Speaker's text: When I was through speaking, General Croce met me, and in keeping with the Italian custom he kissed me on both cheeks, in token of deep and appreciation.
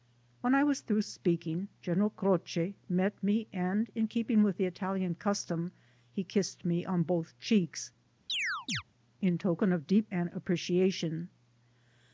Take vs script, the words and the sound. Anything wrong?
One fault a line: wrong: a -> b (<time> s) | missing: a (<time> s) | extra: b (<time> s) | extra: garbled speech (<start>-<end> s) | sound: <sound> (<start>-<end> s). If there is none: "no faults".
sound: chirp (8.3-8.8 s)